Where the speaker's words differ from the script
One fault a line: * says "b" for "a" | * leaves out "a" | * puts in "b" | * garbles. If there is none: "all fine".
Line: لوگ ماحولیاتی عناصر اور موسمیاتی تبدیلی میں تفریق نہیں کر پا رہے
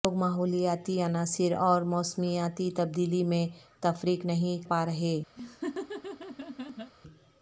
* leaves out "کر"